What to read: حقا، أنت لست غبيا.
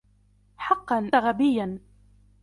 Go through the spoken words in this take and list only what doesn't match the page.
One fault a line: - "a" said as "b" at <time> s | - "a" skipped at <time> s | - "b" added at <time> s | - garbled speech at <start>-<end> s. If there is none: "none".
- "أنت لست" skipped at 1.1 s